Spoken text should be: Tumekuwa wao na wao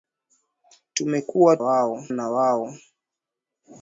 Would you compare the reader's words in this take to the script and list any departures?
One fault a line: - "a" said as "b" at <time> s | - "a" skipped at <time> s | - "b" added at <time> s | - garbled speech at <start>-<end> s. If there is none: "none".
none